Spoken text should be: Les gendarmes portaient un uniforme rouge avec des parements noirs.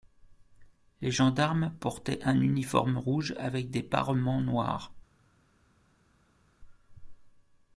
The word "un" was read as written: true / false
true